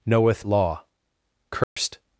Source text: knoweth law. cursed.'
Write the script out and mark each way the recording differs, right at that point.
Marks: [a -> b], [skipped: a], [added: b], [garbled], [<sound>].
knoweth law. cursed.' [dropout]